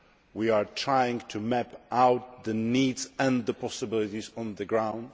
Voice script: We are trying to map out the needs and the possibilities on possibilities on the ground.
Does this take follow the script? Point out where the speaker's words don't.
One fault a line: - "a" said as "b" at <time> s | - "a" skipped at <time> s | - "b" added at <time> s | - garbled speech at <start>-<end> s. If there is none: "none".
- "possibilities on" skipped at 4.5 s